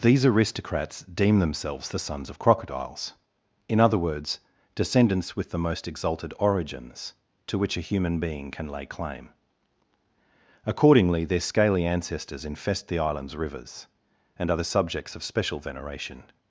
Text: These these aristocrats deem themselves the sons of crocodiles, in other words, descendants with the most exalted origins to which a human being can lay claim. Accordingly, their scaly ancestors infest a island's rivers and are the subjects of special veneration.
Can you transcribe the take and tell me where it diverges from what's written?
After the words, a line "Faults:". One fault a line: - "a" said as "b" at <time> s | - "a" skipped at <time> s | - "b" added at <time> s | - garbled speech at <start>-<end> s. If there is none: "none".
These aristocrats deem themselves the sons of crocodiles, in other words, descendants with the most exalted origins to which a human being can lay claim. Accordingly, their scaly ancestors infest the island's rivers and are the subjects of special veneration.
Faults:
- "these" skipped at 0.2 s
- "a" said as "the" at 12.9 s